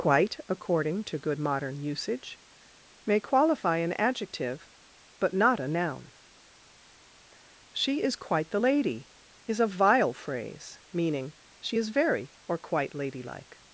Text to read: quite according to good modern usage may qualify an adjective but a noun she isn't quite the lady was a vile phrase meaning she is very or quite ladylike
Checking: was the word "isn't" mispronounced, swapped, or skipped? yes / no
yes